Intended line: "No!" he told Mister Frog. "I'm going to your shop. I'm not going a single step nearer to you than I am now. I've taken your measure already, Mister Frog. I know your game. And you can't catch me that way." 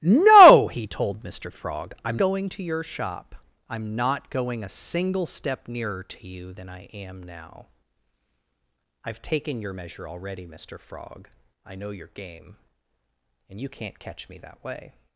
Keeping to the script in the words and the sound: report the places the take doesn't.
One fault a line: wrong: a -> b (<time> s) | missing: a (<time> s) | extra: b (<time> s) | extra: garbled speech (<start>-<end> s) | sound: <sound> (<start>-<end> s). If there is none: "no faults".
no faults